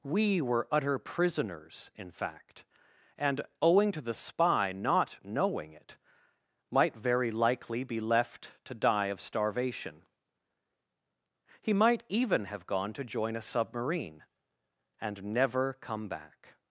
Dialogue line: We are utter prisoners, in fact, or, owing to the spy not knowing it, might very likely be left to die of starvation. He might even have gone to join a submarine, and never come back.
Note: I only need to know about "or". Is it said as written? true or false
false